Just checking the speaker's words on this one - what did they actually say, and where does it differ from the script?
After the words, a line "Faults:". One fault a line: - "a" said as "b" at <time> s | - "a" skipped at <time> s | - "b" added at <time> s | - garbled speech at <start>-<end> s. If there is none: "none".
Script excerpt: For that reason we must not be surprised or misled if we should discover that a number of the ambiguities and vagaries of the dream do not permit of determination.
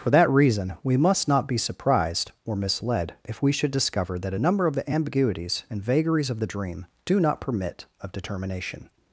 For that reason we must not be surprised or misled if we should discover that a number of the ambiguities and vagaries of the dream do not permit of determination.
Faults:
none